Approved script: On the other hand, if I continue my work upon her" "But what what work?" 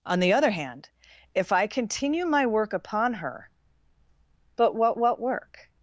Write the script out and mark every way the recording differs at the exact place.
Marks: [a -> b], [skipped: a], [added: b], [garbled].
On the other hand, if I continue my work upon her" "But what what work?"